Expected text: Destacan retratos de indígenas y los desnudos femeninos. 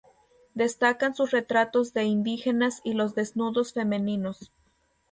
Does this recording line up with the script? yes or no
no